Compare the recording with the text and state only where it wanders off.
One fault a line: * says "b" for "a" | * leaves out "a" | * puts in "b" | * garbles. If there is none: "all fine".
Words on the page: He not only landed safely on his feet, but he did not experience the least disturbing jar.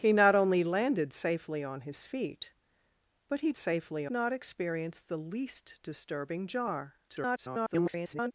* says "safely" for "did"
* garbles